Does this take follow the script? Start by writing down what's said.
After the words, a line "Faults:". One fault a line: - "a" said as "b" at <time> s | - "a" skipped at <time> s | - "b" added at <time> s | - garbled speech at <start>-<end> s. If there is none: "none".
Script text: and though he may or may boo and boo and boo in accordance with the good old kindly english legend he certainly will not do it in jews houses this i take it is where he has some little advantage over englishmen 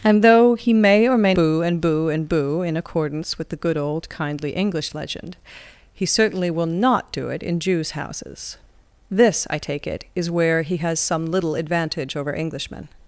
and though he may or may boo and boo and boo in accordance with the good old kindly english legend he certainly will not do it in jews houses this i take it is where he has some little advantage over englishmen
Faults:
none